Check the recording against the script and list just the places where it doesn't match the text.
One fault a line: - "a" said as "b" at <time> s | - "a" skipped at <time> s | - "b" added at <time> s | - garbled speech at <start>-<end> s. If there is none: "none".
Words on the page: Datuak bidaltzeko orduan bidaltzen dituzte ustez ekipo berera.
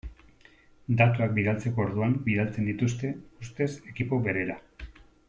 none